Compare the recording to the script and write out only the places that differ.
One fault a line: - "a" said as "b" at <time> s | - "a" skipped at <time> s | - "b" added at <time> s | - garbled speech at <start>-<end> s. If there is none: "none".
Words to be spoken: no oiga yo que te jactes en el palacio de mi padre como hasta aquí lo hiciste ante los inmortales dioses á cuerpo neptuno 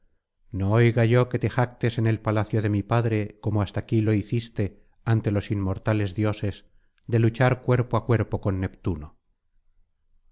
- "de luchar cuerpo" added at 7.0 s
- "con" added at 8.4 s